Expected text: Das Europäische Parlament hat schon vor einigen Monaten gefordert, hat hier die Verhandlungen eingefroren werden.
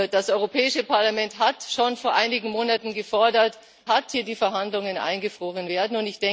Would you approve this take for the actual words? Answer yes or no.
yes